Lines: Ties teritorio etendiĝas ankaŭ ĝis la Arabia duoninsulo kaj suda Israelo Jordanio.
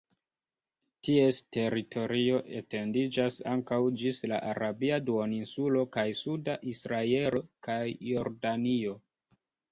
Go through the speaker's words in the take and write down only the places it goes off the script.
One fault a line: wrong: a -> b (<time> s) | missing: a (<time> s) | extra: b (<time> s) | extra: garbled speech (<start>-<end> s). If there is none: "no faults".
extra: kaj (7.7 s)